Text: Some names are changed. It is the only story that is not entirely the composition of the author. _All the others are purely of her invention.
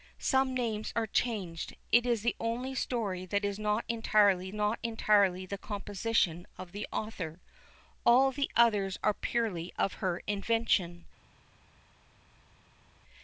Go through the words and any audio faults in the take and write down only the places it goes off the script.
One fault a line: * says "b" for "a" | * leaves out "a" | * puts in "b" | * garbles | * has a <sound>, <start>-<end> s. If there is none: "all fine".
* puts in "not entirely"